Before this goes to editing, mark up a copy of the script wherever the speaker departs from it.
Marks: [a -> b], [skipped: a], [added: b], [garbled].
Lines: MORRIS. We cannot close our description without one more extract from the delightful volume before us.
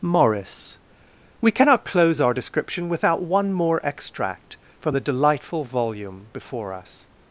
MORRIS. We cannot close our description without one more extract from the delightful volume before us.